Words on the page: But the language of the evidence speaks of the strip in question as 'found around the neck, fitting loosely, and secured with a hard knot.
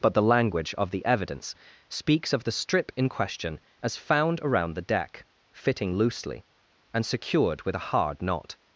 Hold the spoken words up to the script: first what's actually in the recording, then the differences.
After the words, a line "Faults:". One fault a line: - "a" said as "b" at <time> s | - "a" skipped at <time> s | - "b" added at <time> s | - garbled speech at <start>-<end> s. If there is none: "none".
But the language of the evidence speaks of the strip in question as 'found around the deck, fitting loosely, and secured with a hard knot.
Faults:
- "neck" said as "deck" at 4.8 s